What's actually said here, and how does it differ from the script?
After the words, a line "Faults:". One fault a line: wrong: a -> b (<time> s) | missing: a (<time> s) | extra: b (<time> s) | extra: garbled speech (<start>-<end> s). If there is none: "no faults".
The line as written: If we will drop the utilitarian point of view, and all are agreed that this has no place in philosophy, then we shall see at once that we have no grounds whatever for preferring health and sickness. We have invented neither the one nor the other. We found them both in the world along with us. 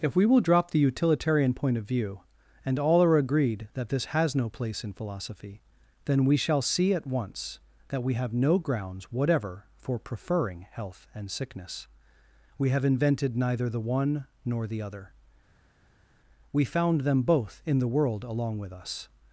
If we will drop the utilitarian point of view, and all are agreed that this has no place in philosophy, then we shall see at once that we have no grounds whatever for preferring health and sickness. We have invented neither the one nor the other. We found them both in the world along with us.
Faults:
no faults